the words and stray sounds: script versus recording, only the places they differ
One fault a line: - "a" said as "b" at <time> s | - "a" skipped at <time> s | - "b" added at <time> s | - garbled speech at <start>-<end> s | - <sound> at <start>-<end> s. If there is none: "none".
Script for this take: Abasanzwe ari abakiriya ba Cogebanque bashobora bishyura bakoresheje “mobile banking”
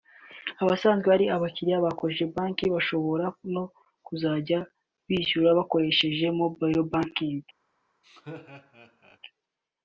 - "no kuzajya" added at 3.5 s
- laugh at 8.0-9.2 s